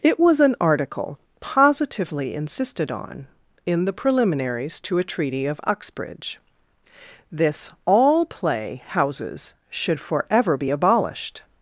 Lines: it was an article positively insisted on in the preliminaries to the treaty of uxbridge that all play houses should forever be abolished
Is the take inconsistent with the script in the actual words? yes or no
yes